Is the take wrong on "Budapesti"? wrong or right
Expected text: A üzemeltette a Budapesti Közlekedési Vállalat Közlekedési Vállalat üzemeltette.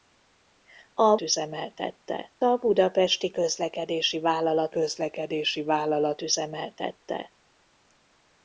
right